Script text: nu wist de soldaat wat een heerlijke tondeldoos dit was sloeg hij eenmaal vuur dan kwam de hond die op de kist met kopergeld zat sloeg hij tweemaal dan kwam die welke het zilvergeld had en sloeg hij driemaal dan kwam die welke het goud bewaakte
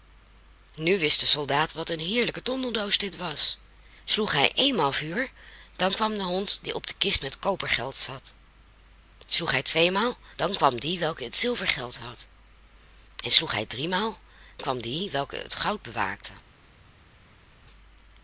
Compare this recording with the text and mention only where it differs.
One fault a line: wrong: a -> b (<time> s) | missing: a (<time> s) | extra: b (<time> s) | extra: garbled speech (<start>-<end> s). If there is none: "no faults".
missing: dan (14.2 s)